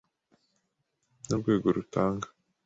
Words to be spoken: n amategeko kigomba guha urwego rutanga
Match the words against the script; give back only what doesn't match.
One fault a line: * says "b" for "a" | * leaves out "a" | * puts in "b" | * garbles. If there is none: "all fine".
* leaves out "amategeko kigomba guha"